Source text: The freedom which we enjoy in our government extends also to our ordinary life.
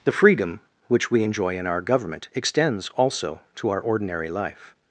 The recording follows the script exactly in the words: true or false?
true